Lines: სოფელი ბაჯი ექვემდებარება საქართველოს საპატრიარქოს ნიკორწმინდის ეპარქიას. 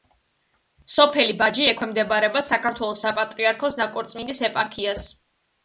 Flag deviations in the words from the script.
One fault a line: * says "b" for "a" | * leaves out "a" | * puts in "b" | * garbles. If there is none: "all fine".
all fine